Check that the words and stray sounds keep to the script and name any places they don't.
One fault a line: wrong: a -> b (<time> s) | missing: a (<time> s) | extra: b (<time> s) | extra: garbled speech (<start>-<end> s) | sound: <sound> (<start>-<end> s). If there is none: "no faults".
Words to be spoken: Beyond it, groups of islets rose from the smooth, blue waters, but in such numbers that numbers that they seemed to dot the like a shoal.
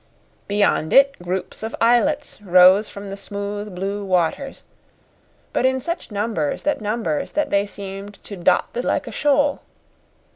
no faults